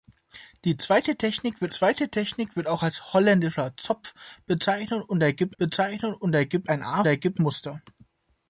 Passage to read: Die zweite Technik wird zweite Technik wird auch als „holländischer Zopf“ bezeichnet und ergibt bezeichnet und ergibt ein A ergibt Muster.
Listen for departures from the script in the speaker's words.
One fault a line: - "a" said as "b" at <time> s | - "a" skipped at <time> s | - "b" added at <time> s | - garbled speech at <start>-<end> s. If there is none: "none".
none